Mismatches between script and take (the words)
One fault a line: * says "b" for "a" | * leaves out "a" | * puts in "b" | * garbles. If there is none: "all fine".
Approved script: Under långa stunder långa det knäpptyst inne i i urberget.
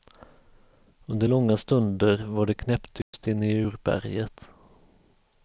* says "var" for "långa"
* leaves out "i"